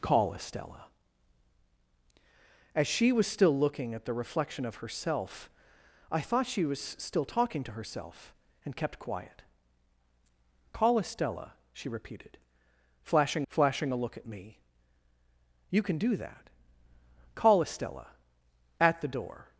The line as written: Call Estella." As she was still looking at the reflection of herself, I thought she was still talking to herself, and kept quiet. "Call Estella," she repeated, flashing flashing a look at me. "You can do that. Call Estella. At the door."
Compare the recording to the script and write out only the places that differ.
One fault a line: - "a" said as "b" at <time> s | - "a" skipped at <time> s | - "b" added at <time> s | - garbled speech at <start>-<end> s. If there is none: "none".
none